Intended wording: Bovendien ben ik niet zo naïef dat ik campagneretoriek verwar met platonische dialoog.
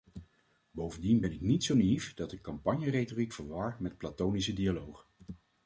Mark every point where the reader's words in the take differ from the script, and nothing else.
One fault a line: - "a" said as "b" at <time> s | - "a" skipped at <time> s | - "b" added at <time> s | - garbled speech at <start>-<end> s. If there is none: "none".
none